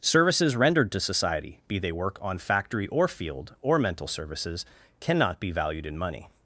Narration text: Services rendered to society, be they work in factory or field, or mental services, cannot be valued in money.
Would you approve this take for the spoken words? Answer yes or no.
no